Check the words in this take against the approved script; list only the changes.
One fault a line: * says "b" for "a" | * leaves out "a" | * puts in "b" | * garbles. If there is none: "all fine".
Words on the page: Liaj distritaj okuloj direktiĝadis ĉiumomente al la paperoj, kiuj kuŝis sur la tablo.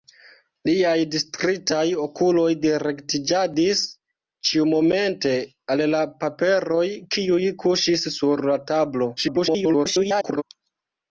* garbles